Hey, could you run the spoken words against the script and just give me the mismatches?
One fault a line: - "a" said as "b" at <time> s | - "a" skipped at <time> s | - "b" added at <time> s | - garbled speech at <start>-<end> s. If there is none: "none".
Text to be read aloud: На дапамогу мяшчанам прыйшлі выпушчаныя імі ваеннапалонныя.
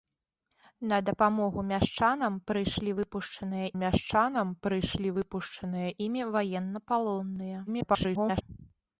- "мяшчанам прыйшлі выпушчаныя" added at 3.8 s
- garbled speech at 7.7-8.4 s